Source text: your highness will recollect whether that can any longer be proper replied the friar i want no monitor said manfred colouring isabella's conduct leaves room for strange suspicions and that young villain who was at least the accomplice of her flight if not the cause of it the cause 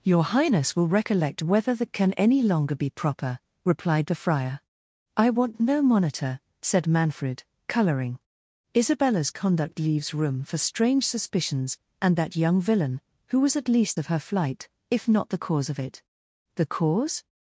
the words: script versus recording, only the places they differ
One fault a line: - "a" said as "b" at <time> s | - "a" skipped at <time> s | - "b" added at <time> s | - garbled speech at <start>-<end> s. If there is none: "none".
- "the accomplice" skipped at 14.0 s